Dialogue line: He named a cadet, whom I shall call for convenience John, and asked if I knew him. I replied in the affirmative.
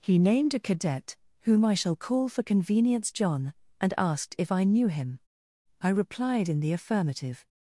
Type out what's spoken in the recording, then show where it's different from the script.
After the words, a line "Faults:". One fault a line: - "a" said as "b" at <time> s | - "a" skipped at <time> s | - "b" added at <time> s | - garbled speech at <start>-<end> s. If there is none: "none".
He named a cadet, whom I shall call for convenience John, and asked if I knew him. I replied in the affirmative.
Faults:
none